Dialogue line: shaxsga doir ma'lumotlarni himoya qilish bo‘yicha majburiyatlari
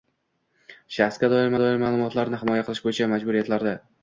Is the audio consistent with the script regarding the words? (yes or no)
no